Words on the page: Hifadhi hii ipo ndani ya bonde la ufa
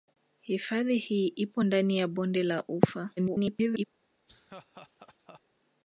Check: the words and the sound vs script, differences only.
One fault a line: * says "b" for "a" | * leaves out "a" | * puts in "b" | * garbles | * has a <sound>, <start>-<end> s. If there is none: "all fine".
* garbles
* has a laugh, 4.3-5.4 s